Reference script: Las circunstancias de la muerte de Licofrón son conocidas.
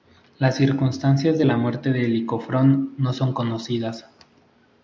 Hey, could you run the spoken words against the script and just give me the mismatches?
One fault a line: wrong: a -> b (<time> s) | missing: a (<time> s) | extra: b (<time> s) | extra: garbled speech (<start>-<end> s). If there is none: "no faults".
extra: no (3.0 s)